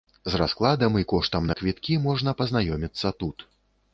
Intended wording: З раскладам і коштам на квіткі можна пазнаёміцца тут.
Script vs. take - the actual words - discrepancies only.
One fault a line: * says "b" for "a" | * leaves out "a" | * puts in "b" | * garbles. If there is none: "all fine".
all fine